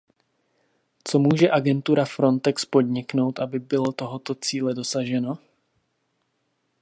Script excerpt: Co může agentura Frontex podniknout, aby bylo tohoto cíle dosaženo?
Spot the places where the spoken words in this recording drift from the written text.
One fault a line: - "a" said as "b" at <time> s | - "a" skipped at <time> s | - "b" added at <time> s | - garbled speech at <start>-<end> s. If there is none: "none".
none